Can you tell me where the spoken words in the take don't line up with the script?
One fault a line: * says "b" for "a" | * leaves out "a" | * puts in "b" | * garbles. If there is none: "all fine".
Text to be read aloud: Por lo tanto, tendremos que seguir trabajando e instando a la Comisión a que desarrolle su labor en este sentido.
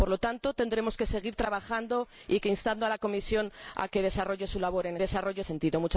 * says "desarrolle" for "este"